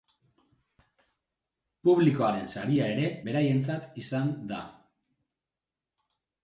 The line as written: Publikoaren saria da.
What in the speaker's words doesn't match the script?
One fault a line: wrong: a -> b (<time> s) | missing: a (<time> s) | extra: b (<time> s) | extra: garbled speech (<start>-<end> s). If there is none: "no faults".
extra: ere beraientzat izan (3.0 s)